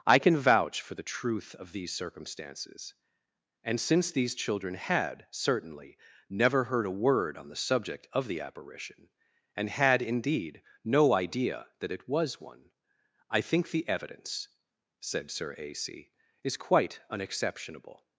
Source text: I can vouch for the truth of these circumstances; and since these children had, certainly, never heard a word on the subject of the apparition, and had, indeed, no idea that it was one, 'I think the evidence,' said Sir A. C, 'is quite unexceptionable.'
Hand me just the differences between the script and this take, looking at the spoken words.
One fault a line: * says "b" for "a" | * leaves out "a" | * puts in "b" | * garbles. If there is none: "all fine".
all fine